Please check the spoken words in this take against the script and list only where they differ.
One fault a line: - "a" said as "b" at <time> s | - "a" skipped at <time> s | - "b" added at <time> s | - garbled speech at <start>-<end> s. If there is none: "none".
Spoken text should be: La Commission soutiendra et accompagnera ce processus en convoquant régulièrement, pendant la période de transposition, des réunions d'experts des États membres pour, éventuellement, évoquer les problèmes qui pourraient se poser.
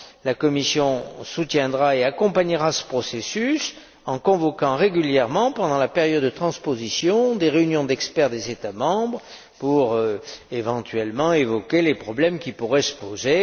none